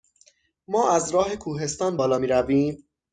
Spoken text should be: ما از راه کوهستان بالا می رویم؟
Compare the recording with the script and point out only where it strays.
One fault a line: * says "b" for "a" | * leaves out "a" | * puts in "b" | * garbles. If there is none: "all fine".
all fine